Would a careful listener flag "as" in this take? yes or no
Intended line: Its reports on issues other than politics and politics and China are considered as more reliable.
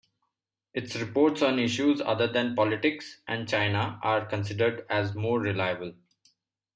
no